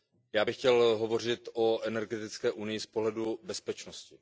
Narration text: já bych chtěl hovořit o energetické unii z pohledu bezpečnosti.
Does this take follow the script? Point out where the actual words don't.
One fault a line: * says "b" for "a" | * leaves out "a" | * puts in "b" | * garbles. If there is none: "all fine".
all fine